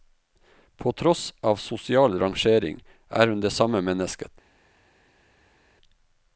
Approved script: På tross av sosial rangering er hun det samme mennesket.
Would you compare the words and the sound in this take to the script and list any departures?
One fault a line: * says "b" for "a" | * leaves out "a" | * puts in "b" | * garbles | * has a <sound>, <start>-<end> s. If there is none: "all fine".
all fine